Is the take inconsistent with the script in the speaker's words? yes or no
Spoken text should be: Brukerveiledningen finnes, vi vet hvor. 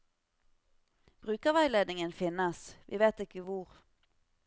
yes